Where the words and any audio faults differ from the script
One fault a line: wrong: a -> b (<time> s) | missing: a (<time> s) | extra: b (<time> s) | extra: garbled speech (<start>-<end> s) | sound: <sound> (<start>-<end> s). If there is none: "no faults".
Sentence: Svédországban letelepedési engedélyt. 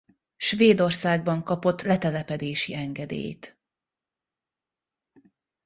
extra: kapott (1.4 s)